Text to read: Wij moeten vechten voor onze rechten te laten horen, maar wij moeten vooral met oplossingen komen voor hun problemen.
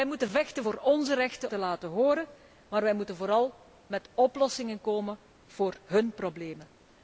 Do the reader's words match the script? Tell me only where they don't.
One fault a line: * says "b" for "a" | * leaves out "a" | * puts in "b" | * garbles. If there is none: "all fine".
all fine